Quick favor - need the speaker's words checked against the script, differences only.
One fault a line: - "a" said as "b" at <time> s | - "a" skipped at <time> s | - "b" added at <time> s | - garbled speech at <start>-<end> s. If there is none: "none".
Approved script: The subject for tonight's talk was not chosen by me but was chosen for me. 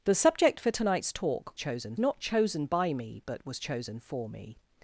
- "was" said as "chosen" at 1.6 s